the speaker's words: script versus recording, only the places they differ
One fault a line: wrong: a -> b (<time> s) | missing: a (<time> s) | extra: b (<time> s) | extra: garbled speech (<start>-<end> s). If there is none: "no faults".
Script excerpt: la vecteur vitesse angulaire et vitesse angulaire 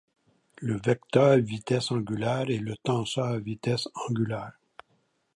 wrong: la -> le (0.6 s)
extra: le tenseur (2.6 s)